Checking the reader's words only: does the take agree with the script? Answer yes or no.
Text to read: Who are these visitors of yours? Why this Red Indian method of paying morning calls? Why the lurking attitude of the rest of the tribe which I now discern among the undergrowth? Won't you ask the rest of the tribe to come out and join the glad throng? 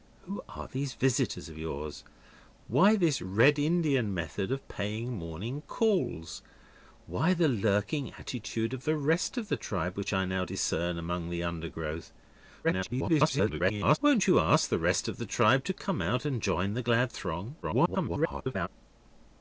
no